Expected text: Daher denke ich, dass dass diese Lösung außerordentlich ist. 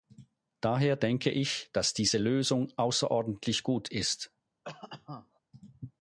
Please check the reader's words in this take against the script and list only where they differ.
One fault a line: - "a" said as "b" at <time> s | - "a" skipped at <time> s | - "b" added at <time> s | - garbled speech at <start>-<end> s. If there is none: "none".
- "dass" skipped at 1.9 s
- "gut" added at 3.6 s